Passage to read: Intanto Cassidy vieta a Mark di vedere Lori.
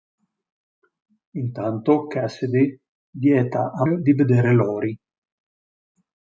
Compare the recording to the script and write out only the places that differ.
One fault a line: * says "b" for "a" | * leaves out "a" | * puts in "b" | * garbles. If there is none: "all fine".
* leaves out "Mark"